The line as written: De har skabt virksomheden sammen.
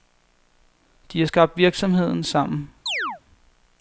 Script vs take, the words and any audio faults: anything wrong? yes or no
yes